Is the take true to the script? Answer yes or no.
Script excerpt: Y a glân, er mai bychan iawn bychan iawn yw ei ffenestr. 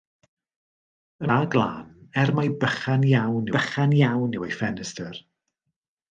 yes